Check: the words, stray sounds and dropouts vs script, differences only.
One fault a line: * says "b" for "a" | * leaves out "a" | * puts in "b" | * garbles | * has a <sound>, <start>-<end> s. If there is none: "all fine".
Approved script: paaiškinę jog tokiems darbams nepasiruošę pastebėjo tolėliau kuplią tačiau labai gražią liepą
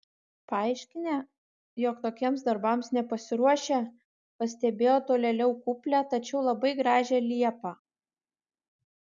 all fine